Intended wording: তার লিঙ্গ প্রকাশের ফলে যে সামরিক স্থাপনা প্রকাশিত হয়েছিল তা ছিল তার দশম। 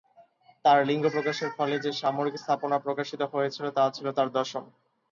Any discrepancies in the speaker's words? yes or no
no